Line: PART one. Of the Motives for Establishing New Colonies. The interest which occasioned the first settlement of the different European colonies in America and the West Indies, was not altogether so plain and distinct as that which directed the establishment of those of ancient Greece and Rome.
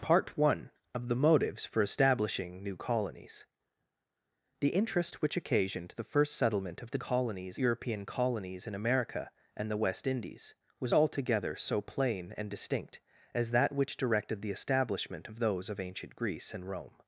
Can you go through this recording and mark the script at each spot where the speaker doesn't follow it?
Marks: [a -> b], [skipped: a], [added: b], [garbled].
PART one. Of the Motives for Establishing New Colonies. The interest which occasioned the first settlement of the [different -> colonies] European colonies in America and the West Indies, was [skipped: not] altogether so plain and distinct as that which directed the establishment of those of ancient Greece and Rome.